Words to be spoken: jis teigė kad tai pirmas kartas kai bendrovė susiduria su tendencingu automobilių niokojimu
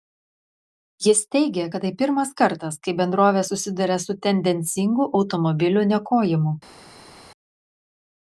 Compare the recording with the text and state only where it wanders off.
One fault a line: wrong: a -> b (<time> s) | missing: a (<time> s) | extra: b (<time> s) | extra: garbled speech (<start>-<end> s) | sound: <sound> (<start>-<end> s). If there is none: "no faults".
no faults